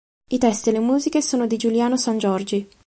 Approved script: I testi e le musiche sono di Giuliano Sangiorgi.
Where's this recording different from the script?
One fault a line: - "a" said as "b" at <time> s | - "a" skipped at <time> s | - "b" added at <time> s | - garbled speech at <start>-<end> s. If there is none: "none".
none